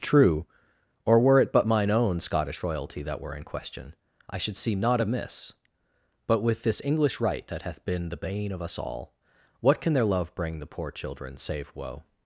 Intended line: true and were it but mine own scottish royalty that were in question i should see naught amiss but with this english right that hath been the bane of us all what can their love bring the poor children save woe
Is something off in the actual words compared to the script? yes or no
yes